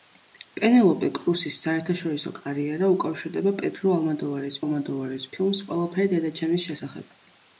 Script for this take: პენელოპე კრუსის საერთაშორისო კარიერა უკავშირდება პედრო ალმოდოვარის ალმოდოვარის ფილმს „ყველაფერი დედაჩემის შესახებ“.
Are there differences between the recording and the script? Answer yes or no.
no